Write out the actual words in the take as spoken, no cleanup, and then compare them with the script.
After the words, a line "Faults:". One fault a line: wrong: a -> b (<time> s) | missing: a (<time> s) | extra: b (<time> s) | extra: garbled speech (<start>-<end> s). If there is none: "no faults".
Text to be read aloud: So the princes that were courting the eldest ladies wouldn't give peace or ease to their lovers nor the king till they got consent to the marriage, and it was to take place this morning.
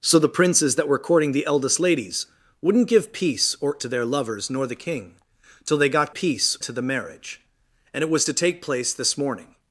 So the princes that were courting the eldest ladies wouldn't give peace or to their lovers nor the king till they got peace to the marriage, and it was to take place this morning.
Faults:
missing: ease (3.8 s)
wrong: consent -> peace (6.1 s)